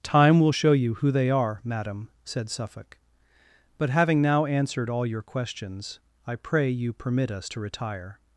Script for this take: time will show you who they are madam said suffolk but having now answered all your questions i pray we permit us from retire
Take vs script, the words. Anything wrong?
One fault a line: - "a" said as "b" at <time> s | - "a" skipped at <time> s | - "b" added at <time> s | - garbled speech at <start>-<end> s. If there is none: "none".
- "we" said as "you" at 6.7 s
- "from" said as "to" at 7.5 s